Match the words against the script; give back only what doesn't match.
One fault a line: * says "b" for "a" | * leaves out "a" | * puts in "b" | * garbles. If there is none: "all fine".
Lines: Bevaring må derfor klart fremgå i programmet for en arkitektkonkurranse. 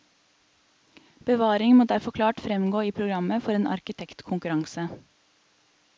all fine